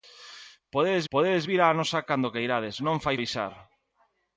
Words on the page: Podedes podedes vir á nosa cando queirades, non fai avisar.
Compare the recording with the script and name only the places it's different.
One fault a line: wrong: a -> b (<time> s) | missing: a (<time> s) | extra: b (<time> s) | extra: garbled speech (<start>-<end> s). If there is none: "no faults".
no faults